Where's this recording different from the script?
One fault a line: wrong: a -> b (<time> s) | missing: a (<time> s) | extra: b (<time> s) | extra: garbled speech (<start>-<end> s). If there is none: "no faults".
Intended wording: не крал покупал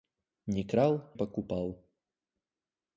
no faults